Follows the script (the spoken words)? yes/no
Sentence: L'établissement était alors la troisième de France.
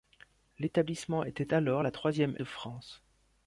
yes